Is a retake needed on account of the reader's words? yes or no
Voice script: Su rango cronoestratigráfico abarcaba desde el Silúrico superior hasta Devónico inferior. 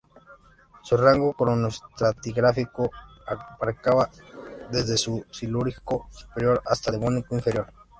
no